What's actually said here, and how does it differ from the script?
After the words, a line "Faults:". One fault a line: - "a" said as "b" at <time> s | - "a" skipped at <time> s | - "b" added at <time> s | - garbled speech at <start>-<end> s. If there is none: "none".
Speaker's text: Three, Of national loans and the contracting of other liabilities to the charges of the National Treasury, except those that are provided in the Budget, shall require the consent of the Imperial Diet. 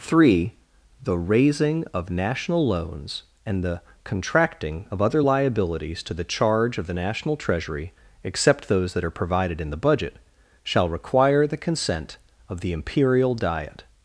Three, The raising of national loans and the contracting of other liabilities to the charge of the National Treasury, except those that are provided in the Budget, shall require the consent of the Imperial Diet.
Faults:
- "The raising" added at 1.0 s
- "charges" said as "charge" at 6.2 s